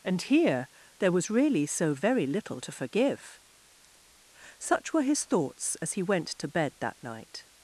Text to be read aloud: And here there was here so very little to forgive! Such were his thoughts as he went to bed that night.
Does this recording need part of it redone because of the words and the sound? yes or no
yes